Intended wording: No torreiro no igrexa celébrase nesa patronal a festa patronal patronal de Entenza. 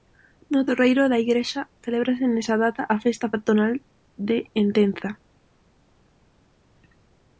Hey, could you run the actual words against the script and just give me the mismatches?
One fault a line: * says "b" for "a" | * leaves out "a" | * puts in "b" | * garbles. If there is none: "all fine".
* says "da" for "no"
* says "data" for "patronal"
* leaves out "patronal"